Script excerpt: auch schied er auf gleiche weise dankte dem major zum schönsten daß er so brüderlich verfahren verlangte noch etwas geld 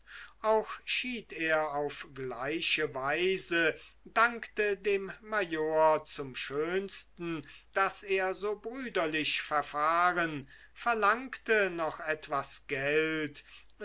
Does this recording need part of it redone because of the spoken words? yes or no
no